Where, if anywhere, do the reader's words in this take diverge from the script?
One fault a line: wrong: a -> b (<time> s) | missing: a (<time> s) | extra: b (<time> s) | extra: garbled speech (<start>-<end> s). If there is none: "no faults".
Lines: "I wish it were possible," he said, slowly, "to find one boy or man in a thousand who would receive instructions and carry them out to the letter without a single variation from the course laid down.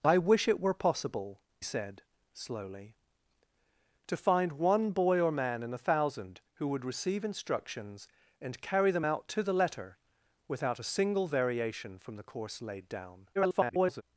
missing: he (1.4 s)
extra: garbled speech (13.3-14.0 s)